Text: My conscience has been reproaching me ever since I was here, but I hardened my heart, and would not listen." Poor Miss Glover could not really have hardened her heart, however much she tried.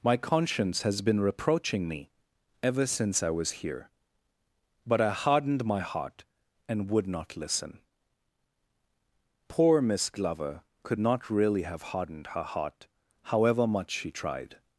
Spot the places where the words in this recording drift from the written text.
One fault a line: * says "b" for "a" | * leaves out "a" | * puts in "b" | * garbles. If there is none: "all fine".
all fine